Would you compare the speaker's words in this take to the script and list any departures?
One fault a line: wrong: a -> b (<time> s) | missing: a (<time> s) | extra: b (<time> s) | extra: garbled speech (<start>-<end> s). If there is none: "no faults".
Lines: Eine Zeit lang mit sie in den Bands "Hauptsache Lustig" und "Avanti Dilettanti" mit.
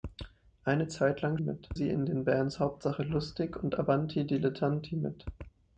no faults